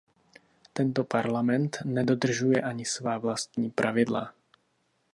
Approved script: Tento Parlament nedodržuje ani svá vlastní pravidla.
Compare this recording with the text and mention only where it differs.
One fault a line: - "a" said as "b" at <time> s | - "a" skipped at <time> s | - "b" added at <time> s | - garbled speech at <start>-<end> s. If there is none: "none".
none